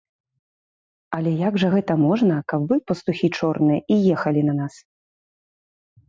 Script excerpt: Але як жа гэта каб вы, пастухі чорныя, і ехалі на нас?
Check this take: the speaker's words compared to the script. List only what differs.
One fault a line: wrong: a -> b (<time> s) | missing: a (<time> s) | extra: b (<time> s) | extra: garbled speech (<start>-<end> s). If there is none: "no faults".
extra: можна (2.0 s)